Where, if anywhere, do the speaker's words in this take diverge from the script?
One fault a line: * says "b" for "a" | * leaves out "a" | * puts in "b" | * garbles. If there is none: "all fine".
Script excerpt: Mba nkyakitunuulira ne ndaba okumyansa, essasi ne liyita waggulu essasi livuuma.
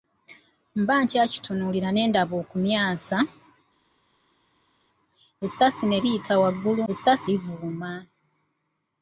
all fine